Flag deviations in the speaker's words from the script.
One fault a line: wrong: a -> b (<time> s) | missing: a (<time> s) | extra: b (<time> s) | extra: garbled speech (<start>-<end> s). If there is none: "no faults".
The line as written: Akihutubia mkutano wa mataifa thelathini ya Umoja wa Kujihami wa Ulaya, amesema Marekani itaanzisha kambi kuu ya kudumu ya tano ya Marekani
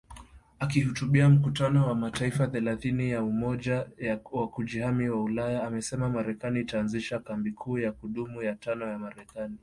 no faults